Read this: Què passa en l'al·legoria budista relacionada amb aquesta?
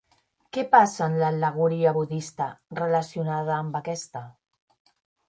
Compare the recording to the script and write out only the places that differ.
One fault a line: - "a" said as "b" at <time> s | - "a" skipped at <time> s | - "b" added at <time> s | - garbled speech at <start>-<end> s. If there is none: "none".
none